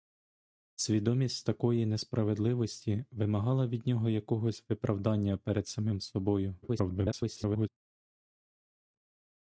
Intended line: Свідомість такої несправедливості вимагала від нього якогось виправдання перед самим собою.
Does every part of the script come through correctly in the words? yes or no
no